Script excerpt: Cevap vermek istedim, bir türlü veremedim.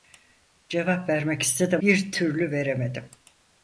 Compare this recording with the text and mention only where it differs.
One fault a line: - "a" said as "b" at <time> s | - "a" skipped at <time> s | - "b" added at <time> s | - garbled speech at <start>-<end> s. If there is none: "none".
none